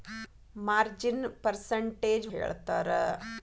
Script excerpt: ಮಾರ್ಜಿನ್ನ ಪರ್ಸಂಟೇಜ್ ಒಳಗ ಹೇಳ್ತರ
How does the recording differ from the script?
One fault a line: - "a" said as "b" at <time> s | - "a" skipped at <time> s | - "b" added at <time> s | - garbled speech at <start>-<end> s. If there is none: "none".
- "ಒಳಗ" skipped at 2.3 s